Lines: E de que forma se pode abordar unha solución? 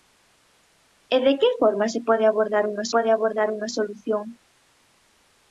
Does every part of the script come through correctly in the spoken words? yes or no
no